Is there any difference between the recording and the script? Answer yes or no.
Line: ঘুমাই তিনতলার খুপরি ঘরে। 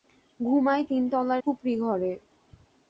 no